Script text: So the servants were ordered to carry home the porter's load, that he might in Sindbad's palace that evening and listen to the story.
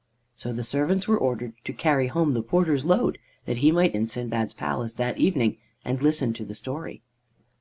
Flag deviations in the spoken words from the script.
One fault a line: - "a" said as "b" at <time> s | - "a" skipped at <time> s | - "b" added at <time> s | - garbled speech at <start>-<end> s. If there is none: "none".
none